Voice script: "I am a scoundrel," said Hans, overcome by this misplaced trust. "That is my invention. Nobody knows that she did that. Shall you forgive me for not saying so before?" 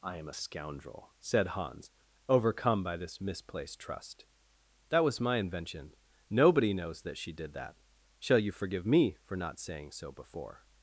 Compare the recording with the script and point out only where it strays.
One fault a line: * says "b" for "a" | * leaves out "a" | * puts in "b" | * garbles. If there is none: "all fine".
* says "was" for "is"